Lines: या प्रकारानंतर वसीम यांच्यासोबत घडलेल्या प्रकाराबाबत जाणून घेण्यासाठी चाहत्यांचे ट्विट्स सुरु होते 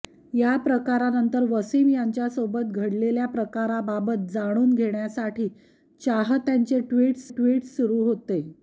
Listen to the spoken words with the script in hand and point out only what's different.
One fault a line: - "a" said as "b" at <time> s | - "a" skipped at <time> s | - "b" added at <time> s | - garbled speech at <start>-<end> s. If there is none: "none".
- "ट्विट्स" added at 7.3 s